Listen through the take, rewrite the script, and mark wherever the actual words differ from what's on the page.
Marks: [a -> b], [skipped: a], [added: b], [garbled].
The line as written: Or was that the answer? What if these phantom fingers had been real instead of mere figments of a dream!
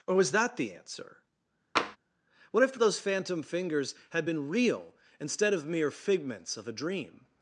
Or was that the answer? What if [these -> those] phantom fingers had been real instead of mere figments of a dream!